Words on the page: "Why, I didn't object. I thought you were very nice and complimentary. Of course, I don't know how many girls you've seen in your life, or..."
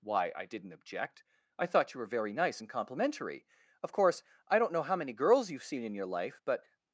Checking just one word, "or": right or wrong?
wrong